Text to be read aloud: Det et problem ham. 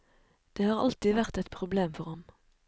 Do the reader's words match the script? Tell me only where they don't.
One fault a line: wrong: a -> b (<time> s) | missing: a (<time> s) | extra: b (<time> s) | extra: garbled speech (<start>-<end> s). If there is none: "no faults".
extra: har alltid vært (0.7 s)
extra: for (2.0 s)